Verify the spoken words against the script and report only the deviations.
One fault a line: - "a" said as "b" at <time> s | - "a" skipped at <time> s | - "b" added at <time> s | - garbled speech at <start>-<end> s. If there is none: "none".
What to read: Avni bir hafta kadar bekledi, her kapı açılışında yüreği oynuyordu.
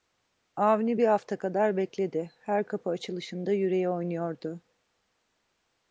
none